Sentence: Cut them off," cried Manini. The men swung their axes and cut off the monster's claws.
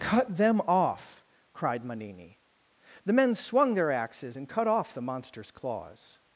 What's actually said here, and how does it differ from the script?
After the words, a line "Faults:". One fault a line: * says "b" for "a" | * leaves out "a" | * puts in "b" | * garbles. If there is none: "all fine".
Cut them off," cried Manini. The men swung their axes and cut off the monster's claws.
Faults:
all fine